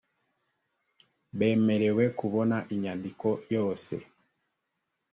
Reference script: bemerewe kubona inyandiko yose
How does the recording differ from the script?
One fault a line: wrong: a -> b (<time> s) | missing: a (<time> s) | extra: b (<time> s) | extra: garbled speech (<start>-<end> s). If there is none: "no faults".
no faults